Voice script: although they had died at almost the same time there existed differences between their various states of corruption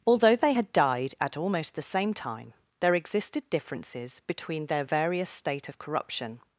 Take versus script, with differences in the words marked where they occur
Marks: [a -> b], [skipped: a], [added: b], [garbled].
although they had died at almost the same time there existed differences between their various [states -> state] of corruption